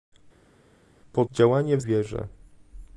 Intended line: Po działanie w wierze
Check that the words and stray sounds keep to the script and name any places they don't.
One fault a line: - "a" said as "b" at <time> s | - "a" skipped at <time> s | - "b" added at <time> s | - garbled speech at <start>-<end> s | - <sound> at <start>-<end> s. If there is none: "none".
none